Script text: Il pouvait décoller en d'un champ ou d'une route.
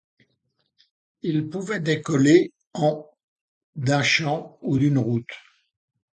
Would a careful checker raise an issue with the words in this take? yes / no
no